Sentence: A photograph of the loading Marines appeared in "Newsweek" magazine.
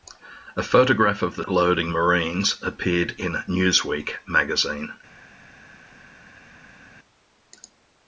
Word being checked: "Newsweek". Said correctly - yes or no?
yes